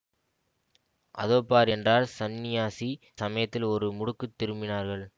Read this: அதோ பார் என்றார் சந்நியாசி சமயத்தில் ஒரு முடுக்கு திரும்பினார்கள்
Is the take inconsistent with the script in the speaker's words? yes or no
no